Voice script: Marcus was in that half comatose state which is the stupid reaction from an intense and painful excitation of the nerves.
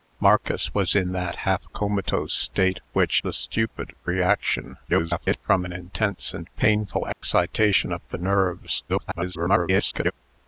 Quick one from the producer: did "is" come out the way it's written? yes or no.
no